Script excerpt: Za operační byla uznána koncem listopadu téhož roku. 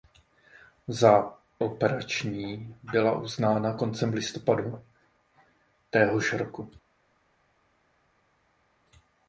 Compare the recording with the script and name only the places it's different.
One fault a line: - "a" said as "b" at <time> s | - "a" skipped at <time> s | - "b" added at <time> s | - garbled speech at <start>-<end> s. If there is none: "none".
none